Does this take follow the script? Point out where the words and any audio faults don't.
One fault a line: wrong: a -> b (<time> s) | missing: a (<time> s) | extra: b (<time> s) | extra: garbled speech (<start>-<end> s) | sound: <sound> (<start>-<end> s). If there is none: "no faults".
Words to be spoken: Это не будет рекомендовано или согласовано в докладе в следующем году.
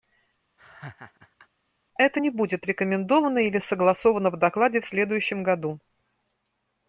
sound: laugh (0.6-1.5 s)